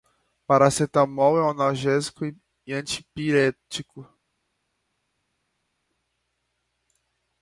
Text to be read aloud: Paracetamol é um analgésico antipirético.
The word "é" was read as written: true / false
true